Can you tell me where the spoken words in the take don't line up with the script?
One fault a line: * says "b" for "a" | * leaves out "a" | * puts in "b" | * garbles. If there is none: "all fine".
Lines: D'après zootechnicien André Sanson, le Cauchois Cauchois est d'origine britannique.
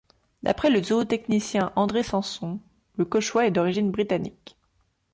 * puts in "le"
* leaves out "Cauchois"